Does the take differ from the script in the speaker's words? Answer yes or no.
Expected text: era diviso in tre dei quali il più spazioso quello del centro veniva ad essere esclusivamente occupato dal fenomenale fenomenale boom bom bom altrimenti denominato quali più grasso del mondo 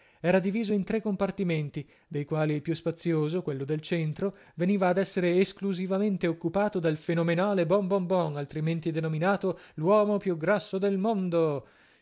yes